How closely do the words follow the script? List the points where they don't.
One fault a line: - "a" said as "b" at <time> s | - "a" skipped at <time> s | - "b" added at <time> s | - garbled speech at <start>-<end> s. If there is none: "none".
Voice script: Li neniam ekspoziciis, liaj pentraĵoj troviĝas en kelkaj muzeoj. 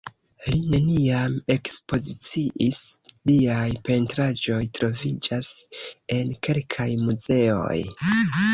none